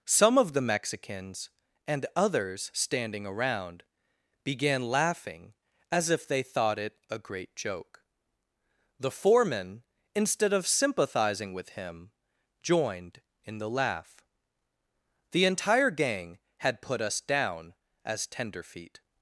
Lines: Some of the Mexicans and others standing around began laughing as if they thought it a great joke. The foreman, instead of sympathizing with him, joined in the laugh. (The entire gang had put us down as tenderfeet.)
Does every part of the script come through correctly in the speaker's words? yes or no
yes